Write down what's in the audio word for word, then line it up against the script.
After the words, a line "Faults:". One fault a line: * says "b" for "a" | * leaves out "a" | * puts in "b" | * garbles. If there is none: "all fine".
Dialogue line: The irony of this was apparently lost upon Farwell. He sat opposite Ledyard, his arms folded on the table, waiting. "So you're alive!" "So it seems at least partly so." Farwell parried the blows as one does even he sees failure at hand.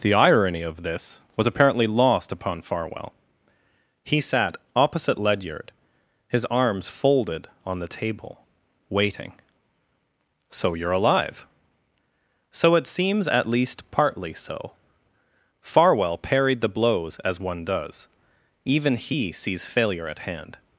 The irony of this was apparently lost upon Farwell. He sat opposite Ledyard, his arms folded on the table, waiting. "So you're alive!" "So it seems at least partly so." Farwell parried the blows as one does even he sees failure at hand.
Faults:
all fine